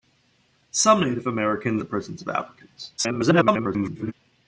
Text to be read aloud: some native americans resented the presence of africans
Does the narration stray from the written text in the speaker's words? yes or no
yes